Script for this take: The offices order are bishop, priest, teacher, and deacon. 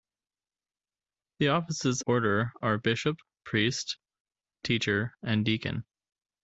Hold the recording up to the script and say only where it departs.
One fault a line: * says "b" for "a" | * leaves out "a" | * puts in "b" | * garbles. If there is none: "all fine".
all fine